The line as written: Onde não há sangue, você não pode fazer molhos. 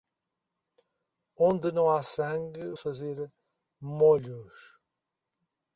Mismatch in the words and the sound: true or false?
true